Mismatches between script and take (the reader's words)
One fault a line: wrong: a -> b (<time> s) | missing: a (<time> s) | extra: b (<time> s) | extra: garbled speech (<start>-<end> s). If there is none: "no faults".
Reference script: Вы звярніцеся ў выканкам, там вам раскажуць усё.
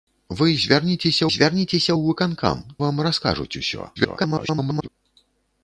extra: звярніцеся (1.3 s)
missing: там (2.6 s)
extra: garbled speech (4.0-4.9 s)